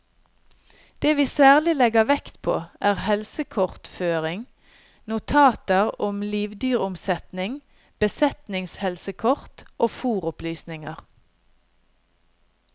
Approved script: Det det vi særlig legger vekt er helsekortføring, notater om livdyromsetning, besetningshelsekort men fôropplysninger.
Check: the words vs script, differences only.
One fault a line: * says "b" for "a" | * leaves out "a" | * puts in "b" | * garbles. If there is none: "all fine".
* leaves out "det"
* puts in "på"
* says "og" for "men"